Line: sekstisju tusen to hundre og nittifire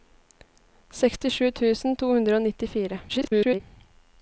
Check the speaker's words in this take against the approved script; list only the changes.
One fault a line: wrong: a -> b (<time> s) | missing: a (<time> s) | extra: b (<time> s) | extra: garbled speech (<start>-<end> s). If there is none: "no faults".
extra: garbled speech (3.1-3.6 s)